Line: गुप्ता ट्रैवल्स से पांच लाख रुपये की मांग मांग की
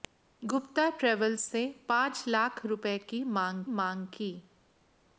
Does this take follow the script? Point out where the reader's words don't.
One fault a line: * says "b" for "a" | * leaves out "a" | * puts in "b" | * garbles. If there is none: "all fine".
all fine